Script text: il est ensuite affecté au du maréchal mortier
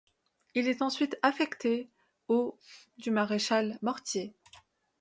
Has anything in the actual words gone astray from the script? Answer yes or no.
no